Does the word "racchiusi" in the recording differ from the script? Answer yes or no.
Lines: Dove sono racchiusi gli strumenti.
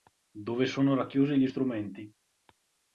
no